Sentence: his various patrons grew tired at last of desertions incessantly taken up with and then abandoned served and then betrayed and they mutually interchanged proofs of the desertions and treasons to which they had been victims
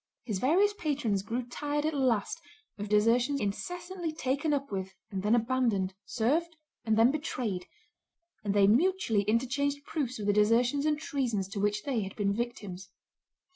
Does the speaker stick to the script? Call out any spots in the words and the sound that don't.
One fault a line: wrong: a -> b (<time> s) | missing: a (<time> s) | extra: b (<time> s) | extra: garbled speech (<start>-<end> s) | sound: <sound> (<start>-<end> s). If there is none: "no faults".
no faults